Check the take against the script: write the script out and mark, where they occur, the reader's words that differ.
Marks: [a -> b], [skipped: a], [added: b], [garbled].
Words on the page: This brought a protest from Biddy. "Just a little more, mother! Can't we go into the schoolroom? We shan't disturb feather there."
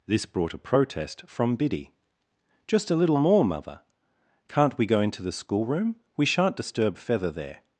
This brought a protest from Biddy. "Just a little more, mother! Can't we go into the schoolroom? We shan't disturb feather there."